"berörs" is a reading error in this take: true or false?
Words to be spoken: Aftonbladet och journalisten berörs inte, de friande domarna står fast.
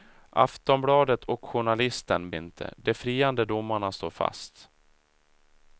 true